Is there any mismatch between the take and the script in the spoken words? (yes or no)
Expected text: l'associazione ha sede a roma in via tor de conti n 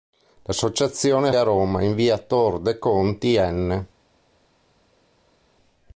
yes